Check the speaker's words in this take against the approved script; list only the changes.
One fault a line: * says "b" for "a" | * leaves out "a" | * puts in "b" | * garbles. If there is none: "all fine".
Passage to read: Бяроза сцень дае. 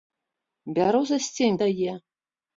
all fine